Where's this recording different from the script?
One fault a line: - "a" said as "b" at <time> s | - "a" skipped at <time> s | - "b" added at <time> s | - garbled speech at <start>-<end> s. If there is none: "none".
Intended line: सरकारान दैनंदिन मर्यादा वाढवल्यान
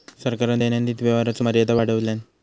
- "व्यवहाराचो" added at 1.0 s